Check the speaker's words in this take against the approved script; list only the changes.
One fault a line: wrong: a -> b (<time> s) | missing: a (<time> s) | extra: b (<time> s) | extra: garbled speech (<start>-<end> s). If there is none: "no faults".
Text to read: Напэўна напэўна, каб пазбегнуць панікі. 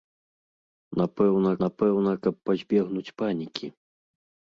no faults